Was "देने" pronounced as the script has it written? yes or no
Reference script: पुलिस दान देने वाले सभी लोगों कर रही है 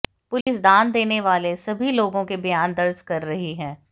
yes